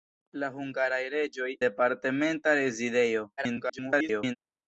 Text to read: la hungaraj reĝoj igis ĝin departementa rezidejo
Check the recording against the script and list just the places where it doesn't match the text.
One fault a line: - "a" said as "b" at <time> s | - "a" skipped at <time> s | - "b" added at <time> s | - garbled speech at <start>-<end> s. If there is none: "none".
- "igis ĝin" skipped at 1.5 s
- garbled speech at 3.4-4.4 s